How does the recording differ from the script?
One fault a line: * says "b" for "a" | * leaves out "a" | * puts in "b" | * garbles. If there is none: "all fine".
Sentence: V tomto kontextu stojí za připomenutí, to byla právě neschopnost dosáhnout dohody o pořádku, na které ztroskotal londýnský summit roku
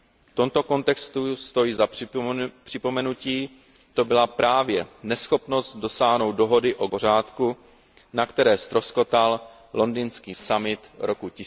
all fine